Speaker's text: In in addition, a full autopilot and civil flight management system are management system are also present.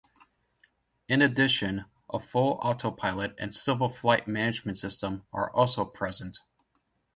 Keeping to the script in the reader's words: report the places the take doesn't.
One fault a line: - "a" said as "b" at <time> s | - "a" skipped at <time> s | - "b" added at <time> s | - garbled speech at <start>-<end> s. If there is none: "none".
- "in" skipped at 1.2 s
- "management system are" skipped at 5.5 s